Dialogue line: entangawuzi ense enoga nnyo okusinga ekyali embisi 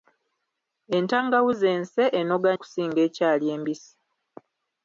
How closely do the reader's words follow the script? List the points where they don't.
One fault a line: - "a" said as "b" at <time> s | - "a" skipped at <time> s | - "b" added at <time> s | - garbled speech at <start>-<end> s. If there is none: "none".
- "nnyo" skipped at 2.5 s